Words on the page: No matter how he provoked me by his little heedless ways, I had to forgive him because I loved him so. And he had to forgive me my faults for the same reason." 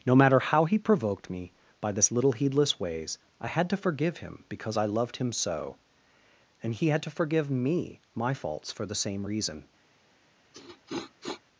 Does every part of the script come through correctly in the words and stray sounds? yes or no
no